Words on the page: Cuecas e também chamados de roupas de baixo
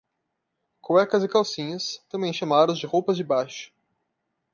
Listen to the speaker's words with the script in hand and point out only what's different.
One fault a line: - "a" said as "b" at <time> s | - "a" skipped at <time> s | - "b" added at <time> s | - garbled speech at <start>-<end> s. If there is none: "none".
- "calcinhas" added at 1.3 s